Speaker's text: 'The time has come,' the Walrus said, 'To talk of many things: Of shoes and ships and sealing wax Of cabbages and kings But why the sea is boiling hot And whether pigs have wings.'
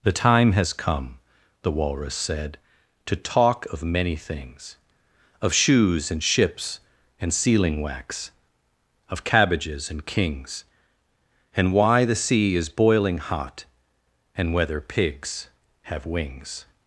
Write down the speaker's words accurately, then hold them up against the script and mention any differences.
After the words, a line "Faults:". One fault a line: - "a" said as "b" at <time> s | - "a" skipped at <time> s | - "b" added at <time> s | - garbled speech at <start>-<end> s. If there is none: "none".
'The time has come,' the Walrus said, 'To talk of many things: Of shoes and ships and sealing wax Of cabbages and kings And why the sea is boiling hot And whether pigs have wings.'
Faults:
- "But" said as "And" at 11.6 s